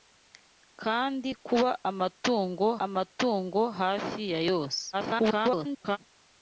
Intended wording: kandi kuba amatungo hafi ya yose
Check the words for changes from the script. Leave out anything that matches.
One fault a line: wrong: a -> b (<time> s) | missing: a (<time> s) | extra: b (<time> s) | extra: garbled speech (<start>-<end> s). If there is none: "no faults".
extra: amatungo (2.9 s)
extra: garbled speech (4.9-6.0 s)